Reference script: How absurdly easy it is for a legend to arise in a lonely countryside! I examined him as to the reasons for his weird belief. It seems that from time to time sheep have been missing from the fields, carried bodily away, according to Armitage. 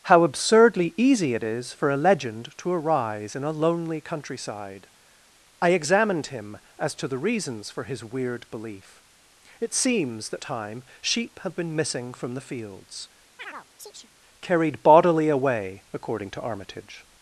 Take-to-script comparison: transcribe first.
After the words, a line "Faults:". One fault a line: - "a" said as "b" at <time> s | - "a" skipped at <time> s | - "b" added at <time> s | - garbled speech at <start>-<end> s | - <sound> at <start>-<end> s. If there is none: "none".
How absurdly easy it is for a legend to arise in a lonely countryside! I examined him as to the reasons for his weird belief. It seems that time sheep have been missing from the fields, carried bodily away, according to Armitage.
Faults:
- "from time to" skipped at 10.4 s
- chirp at 13.4-14.1 s